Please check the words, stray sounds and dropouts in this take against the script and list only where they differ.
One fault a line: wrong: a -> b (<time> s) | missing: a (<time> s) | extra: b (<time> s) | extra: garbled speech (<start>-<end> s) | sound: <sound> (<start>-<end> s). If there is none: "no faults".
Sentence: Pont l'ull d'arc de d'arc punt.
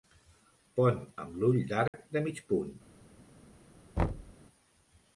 extra: amb (1.2 s)
sound: dropout (1.9-1.9 s)
wrong: d'arc -> mig (2.3 s)
sound: thud (4.0-4.3 s)